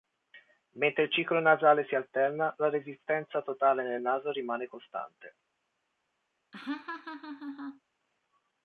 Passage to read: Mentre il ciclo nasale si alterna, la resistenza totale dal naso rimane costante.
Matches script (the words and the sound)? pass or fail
fail